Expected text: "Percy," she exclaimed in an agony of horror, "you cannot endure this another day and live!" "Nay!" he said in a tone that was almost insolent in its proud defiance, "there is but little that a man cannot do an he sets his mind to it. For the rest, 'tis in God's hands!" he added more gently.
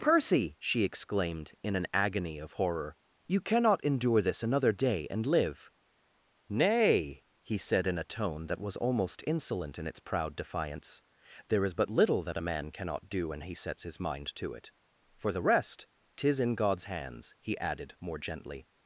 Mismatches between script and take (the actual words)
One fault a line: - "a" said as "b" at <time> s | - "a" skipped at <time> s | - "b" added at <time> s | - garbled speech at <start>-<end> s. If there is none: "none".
- "an" said as "when" at 13.3 s